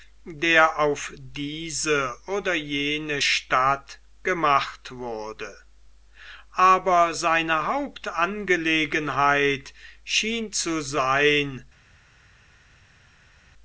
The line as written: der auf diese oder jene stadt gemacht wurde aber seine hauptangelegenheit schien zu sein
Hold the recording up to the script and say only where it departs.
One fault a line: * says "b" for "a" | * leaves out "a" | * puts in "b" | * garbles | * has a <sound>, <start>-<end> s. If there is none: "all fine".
all fine